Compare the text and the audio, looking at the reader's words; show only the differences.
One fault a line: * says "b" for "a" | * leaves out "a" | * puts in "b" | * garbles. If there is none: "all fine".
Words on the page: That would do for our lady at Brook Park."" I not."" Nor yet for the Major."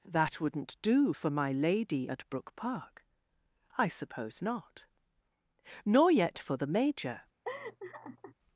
* says "wouldn't" for "would"
* says "my" for "our"
* puts in "suppose"